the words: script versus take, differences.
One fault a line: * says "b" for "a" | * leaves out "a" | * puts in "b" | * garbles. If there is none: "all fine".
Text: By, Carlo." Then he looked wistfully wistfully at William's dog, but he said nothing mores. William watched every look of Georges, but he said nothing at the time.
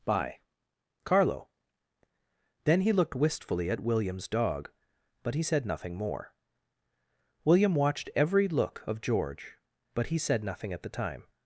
* leaves out "wistfully"
* says "more" for "mores"
* says "George" for "Georges"